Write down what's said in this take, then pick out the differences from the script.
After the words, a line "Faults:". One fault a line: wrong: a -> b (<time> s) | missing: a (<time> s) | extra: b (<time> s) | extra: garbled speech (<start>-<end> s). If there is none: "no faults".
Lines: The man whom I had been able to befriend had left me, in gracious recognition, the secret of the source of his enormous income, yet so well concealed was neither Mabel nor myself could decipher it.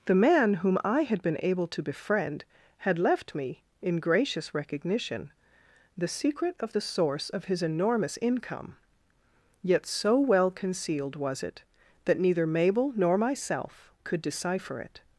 The man whom I had been able to befriend had left me, in gracious recognition, the secret of the source of his enormous income, yet so well concealed was it that neither Mabel nor myself could decipher it.
Faults:
extra: it that (11.4 s)